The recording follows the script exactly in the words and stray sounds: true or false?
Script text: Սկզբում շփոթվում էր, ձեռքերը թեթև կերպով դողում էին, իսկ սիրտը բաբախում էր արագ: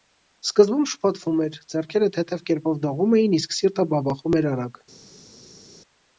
true